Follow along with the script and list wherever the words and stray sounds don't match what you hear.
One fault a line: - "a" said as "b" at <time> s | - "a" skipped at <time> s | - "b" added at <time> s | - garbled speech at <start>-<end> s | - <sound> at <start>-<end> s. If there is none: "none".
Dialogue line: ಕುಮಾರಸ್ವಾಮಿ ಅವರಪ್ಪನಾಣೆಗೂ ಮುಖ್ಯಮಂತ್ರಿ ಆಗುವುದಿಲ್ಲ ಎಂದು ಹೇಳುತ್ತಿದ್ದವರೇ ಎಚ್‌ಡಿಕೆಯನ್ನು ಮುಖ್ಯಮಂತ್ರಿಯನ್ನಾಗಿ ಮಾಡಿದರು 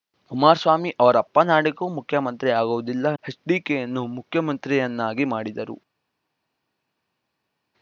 - "ಎಂದು ಹೇಳುತ್ತಿದ್ದವರೇ" skipped at 3.1 s